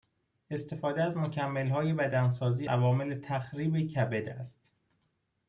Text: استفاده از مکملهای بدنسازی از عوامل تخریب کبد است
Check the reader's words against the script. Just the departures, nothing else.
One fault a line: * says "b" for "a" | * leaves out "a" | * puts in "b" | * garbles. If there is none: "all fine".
* leaves out "از"